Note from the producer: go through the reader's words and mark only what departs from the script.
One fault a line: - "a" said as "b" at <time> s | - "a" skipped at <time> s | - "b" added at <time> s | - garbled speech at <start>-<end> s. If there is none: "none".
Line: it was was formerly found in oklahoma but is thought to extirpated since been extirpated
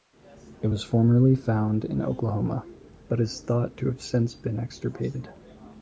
- "was" skipped at 0.8 s
- "extirpated" said as "have" at 3.9 s